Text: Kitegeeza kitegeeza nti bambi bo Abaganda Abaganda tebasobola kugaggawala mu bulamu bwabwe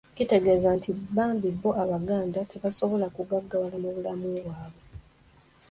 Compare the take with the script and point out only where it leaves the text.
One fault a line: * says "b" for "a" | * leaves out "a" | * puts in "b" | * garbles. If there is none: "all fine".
* leaves out "kitegeeza"
* leaves out "Abaganda"